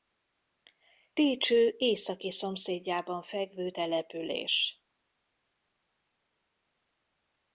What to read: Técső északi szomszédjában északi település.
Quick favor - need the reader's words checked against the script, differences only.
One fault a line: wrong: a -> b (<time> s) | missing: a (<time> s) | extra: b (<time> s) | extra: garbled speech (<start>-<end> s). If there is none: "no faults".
wrong: északi -> fekvő (3.2 s)